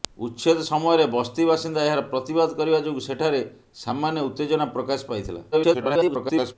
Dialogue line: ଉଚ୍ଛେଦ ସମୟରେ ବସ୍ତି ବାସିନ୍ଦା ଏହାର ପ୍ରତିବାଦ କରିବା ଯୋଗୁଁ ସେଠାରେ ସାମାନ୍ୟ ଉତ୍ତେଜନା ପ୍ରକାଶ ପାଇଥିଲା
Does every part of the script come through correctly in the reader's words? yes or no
no